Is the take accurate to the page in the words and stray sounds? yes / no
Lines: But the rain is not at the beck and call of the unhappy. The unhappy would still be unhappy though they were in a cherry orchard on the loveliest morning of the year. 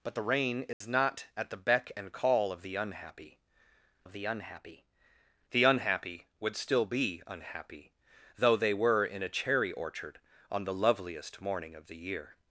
no